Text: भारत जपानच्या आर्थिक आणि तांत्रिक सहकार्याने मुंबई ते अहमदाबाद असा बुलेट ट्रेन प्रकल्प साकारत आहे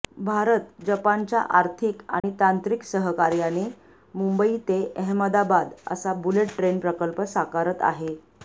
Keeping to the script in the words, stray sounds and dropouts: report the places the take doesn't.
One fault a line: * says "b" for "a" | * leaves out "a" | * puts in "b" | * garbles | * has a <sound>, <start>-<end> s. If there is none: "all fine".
* has a dropout, 2.2-2.2 s